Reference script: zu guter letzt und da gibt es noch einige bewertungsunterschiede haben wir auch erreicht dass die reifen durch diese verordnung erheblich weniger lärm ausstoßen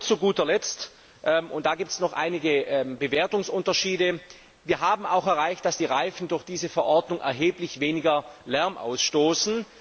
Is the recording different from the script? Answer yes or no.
no